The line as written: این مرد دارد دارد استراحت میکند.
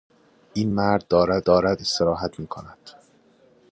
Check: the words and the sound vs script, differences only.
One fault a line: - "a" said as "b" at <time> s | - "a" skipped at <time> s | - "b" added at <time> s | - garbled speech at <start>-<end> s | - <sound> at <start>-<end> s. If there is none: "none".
none